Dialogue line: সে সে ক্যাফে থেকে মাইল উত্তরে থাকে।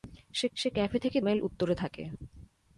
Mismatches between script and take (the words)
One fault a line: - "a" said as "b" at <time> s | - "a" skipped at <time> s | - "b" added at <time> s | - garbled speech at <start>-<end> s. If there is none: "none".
none